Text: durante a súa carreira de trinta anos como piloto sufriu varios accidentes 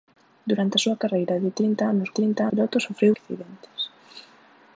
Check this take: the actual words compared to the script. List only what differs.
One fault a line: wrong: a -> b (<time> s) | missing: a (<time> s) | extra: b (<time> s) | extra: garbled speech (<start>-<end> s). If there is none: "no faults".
wrong: como -> trinta (2.2 s)
missing: varios (3.1 s)